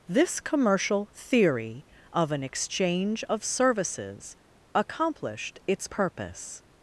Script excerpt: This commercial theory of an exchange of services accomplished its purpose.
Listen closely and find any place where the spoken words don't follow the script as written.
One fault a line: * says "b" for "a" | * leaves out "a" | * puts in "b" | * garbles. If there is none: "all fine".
all fine